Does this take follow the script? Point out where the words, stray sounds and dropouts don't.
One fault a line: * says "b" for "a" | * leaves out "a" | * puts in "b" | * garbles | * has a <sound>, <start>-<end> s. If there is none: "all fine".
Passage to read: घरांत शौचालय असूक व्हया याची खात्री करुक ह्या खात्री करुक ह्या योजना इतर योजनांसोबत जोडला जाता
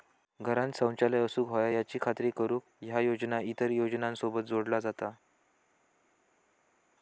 * leaves out "खात्री करुक ह्या"